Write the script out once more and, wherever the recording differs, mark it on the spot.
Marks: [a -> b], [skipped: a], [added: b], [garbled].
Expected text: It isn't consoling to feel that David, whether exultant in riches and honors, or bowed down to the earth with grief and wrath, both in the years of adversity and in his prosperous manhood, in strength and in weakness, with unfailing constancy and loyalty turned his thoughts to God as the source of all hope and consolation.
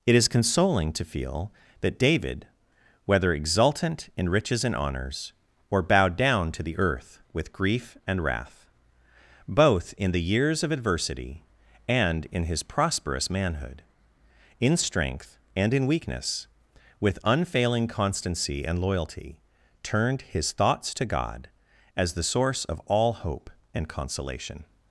It [isn't -> is] consoling to feel that David, whether exultant in riches and honors, or bowed down to the earth with grief and wrath, both in the years of adversity and in his prosperous manhood, in strength and in weakness, with unfailing constancy and loyalty turned his thoughts to God as the source of all hope and consolation.